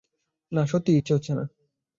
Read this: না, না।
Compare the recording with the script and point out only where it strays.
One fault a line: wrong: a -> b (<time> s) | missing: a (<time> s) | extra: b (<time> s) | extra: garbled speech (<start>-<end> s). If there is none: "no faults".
extra: সত্যিই ইচ্ছে হচ্ছে (0.7 s)